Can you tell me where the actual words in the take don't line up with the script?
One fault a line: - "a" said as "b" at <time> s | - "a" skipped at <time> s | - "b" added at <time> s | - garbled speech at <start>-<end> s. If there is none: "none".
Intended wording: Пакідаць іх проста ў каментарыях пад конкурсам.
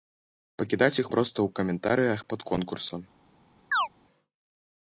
none